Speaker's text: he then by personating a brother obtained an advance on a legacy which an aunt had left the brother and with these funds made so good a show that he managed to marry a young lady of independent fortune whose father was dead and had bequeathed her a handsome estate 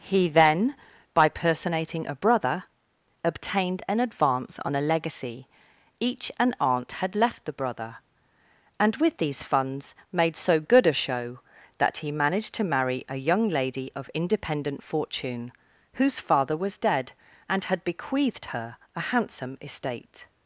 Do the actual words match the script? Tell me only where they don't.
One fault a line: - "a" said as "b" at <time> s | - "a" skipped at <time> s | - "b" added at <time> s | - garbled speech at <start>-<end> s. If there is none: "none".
- "which" said as "each" at 6.0 s